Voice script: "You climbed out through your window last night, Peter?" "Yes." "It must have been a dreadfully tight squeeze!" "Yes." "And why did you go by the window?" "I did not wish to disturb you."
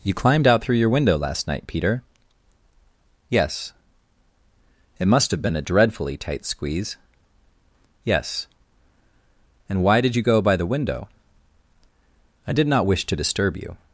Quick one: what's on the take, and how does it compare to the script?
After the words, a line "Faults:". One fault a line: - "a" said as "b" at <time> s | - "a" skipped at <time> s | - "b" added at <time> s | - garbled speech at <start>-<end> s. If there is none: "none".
"You climbed out through your window last night, Peter?" "Yes." "It must have been a dreadfully tight squeeze!" "Yes." "And why did you go by the window?" "I did not wish to disturb you."
Faults:
none